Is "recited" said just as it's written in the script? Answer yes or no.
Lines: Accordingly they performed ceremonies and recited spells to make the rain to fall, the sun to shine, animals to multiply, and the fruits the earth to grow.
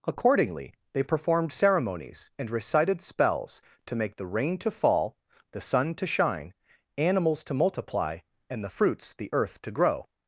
yes